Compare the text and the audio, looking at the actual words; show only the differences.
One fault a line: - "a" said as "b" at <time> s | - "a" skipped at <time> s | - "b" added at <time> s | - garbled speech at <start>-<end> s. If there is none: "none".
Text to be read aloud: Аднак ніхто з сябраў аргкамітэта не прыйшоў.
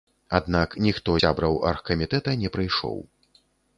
- "з" skipped at 1.2 s